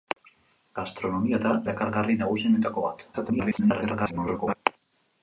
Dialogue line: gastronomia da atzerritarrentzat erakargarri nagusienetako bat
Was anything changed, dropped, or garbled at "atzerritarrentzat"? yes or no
yes